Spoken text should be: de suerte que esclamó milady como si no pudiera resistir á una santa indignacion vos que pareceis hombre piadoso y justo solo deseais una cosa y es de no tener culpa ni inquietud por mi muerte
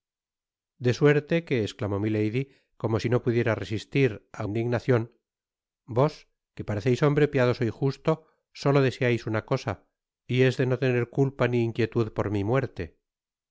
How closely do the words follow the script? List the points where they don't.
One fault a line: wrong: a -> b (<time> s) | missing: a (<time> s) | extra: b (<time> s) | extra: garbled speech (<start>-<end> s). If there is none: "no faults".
missing: una santa (4.4 s)